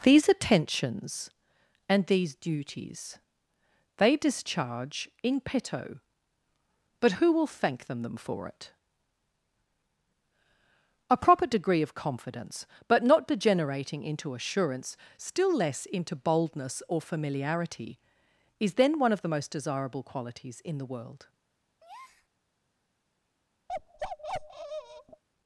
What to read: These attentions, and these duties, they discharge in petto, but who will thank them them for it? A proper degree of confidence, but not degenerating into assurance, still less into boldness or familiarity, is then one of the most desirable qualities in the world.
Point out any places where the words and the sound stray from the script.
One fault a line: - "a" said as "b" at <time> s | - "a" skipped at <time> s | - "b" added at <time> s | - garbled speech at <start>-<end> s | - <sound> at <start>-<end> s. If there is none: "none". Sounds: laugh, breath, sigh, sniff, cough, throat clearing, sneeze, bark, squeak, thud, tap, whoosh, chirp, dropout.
- breath at 21.8-22.3 s
- bark at 23.7-25.2 s